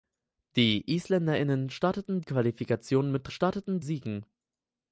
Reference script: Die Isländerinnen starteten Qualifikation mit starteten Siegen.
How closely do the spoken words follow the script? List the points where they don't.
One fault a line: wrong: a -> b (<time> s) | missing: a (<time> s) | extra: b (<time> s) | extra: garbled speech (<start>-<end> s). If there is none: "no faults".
no faults